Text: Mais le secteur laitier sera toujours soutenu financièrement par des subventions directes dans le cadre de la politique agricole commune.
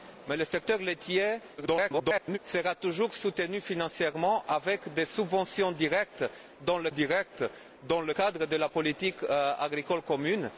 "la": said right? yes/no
yes